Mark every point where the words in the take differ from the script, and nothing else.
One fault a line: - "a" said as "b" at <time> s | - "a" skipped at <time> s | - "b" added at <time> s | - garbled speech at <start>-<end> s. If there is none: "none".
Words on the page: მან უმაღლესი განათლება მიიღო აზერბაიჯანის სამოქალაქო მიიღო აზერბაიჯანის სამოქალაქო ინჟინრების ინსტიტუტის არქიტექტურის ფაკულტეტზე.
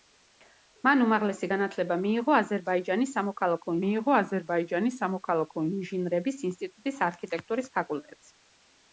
none